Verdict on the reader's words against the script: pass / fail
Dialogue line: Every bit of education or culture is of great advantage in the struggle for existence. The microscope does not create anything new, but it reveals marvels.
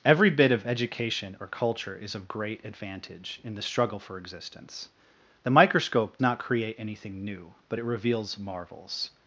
fail